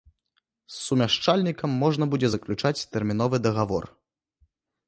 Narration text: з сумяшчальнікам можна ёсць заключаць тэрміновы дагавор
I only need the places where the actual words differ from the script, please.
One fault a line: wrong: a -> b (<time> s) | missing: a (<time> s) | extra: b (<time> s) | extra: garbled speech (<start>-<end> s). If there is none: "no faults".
wrong: ёсць -> будзе (2.1 s)